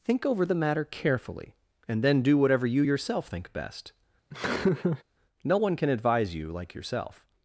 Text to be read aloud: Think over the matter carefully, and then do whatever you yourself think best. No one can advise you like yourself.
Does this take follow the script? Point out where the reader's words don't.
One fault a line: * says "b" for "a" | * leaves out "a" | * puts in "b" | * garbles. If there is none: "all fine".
all fine